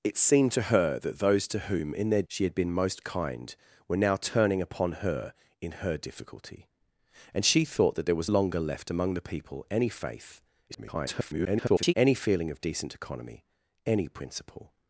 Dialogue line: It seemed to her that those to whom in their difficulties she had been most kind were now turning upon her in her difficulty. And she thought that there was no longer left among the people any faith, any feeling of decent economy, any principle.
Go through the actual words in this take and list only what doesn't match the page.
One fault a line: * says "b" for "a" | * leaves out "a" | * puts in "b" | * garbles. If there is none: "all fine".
* leaves out "difficulties"
* leaves out "no"
* garbles